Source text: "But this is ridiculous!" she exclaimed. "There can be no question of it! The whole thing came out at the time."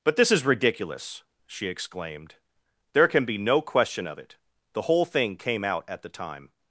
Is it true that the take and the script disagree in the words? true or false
false